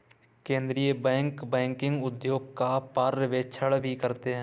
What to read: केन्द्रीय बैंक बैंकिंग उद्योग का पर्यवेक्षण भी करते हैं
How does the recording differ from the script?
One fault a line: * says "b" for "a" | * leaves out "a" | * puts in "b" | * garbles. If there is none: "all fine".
all fine